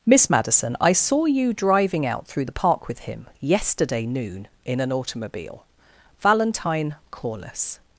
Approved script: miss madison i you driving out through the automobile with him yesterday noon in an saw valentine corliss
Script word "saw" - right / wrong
wrong